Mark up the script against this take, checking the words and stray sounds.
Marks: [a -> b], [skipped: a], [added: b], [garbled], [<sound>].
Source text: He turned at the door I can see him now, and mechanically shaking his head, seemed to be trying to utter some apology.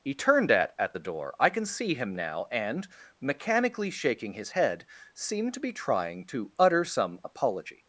He turned at [added: at] the door I can see him now, and mechanically shaking his head, seemed to be trying to utter some apology.